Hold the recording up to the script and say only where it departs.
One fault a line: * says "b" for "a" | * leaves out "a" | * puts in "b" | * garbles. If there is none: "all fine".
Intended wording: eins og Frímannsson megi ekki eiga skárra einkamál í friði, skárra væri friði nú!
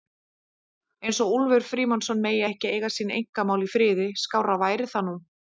* puts in "Úlfur"
* says "sín" for "skárra"
* says "það" for "friði"